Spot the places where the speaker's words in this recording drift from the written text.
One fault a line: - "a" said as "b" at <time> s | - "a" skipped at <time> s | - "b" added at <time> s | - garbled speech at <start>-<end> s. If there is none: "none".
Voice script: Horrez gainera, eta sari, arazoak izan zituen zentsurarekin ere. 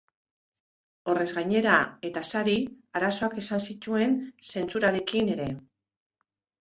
none